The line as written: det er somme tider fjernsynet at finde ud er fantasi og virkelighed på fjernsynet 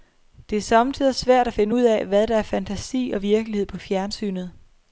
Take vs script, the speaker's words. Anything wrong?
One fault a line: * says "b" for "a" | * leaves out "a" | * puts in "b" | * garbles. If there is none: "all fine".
* says "svært" for "fjernsynet"
* puts in "af hvad der"